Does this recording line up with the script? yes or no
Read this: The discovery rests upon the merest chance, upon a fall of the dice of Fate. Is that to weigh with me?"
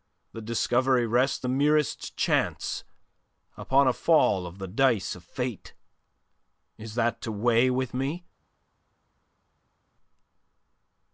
no